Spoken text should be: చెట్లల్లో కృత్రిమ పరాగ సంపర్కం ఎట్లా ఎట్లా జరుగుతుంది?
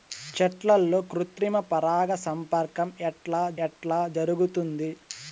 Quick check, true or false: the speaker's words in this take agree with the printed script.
true